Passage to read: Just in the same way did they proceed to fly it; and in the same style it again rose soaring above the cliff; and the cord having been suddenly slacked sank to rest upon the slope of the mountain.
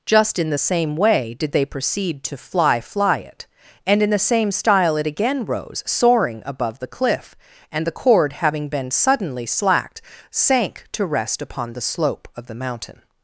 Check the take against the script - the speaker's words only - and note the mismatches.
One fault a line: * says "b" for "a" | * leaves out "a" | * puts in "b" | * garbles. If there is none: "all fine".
* puts in "fly"